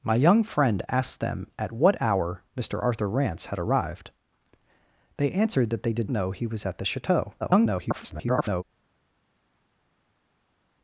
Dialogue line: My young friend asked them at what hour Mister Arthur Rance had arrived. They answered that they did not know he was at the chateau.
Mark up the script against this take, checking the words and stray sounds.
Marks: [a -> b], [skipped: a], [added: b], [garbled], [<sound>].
My young friend asked them at what hour Mister Arthur Rance had arrived. They answered that they did [skipped: not] know he was at the chateau. [garbled]